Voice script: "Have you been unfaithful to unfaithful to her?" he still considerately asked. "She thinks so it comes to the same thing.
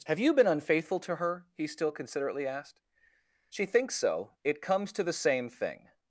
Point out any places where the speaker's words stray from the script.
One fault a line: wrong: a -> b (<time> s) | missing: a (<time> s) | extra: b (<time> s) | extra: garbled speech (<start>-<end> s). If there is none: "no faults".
missing: unfaithful to (1.2 s)